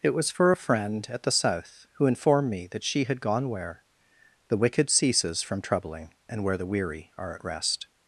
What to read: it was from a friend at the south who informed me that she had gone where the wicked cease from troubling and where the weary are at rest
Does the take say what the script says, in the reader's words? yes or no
no